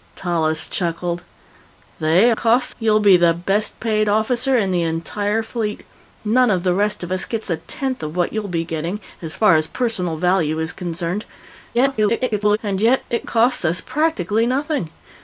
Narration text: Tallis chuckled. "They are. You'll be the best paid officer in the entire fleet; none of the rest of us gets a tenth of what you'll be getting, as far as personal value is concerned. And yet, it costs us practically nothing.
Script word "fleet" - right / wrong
right